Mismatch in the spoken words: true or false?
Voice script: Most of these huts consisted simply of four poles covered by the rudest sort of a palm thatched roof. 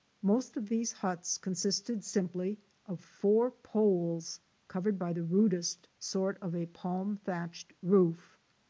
false